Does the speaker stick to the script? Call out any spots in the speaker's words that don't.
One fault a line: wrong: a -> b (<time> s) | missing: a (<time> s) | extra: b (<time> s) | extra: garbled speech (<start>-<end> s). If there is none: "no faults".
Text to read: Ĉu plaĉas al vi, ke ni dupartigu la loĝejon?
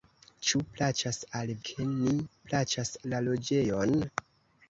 missing: vi (1.5 s)
wrong: dupartigu -> plaĉas (2.5 s)